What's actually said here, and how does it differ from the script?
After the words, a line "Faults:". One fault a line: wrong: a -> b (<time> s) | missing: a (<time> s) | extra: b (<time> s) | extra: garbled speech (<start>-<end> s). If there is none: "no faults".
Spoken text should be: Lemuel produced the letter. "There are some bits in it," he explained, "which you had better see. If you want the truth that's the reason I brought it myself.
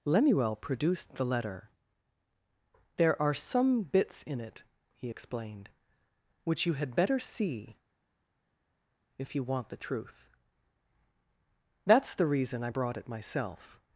Lemuel produced the letter. "There are some bits in it," he explained, "which you had better see. If you want the truth that's the reason I brought it myself.
Faults:
no faults